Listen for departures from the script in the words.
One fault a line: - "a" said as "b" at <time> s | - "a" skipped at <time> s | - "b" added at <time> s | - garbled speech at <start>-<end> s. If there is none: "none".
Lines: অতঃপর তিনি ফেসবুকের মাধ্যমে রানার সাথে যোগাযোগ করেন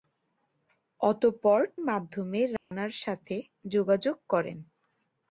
- "তিনি ফেসবুকের" skipped at 1.6 s